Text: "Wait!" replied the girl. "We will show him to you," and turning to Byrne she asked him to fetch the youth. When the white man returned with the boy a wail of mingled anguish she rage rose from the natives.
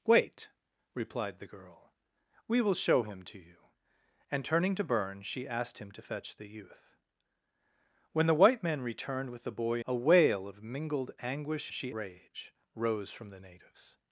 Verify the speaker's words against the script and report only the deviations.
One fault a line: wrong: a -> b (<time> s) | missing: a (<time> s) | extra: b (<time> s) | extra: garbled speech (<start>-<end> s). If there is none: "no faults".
no faults